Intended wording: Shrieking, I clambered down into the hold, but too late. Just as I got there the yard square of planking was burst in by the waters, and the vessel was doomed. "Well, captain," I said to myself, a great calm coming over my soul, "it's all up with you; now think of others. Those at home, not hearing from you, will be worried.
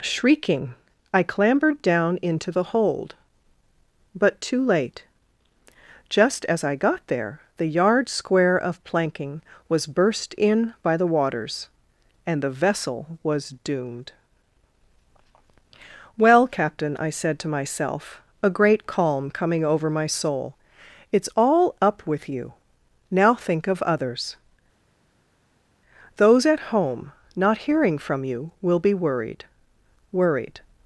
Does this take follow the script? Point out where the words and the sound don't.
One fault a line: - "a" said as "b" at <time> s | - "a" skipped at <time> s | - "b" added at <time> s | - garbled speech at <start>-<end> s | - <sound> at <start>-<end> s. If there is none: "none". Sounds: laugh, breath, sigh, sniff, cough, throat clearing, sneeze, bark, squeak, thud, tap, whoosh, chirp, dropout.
- "worried" added at 30.1 s